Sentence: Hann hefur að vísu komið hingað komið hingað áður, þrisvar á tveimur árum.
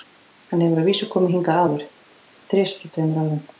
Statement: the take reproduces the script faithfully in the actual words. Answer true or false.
false